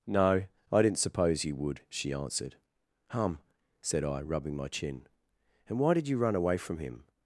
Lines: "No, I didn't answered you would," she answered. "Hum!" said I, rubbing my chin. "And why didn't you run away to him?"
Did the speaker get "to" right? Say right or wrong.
wrong